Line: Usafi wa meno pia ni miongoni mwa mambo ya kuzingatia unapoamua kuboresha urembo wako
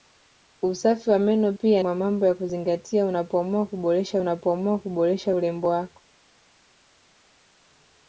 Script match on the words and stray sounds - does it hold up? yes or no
no